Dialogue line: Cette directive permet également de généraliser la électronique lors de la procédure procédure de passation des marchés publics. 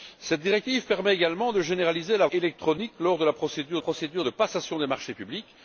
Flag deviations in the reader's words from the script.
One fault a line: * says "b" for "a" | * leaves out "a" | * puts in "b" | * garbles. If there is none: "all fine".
all fine